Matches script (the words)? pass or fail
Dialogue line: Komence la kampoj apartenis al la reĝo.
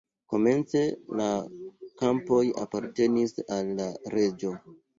pass